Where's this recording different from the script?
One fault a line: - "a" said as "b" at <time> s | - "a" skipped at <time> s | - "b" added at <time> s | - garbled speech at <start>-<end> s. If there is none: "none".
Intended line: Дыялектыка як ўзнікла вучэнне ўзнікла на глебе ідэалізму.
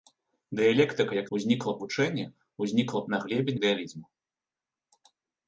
none